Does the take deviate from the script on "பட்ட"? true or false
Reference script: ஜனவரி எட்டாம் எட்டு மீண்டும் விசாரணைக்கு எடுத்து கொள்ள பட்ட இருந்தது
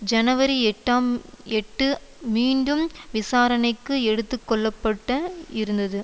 false